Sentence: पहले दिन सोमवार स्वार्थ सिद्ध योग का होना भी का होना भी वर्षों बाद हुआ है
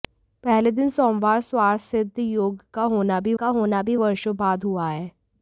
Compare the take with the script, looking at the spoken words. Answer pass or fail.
pass